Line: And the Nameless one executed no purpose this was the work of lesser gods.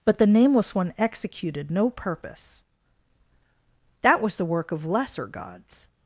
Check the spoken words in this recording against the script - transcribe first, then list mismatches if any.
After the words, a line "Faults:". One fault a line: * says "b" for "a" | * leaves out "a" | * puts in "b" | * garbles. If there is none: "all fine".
But the Nameless one executed no purpose that was the work of lesser gods.
Faults:
* says "But" for "And"
* says "that" for "this"